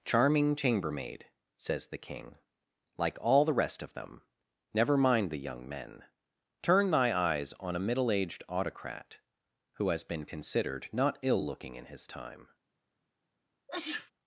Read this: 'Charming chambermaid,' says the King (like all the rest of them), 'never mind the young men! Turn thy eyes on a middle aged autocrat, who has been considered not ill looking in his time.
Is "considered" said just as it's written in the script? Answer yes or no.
yes